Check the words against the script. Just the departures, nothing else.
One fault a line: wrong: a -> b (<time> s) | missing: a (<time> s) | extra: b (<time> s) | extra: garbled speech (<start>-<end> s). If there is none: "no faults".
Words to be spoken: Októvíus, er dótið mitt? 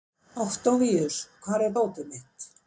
extra: hvar (1.4 s)